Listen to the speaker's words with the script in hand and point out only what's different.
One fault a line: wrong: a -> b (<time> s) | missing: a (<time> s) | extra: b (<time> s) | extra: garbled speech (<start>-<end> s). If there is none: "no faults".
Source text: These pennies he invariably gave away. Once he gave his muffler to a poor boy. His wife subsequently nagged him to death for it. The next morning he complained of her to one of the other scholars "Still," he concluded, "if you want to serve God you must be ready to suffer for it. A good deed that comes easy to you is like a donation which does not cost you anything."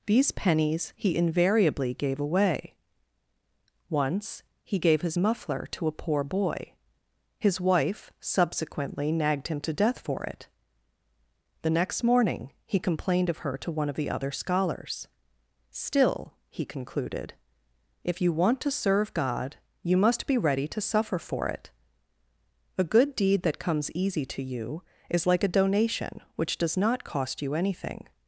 no faults